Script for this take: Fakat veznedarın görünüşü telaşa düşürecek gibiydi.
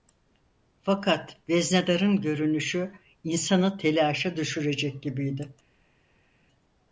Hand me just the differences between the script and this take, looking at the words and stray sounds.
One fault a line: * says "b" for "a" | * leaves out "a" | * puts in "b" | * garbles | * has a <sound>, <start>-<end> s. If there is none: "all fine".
* puts in "insanı"